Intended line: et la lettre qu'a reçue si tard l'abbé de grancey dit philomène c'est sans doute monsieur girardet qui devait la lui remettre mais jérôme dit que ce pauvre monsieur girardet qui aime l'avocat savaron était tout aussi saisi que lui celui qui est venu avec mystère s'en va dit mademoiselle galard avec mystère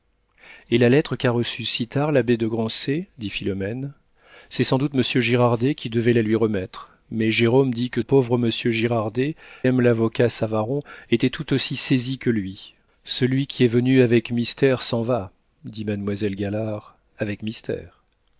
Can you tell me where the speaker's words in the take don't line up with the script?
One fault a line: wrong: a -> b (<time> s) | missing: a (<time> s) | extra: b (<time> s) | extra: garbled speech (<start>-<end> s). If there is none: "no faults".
missing: ce (8.0 s)
missing: qui (9.3 s)